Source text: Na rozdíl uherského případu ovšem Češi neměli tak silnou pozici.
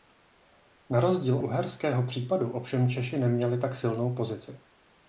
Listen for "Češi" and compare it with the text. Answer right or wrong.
right